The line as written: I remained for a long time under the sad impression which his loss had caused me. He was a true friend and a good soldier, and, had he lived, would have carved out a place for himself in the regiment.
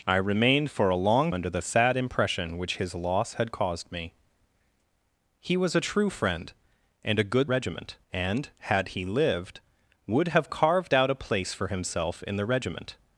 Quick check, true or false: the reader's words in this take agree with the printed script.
false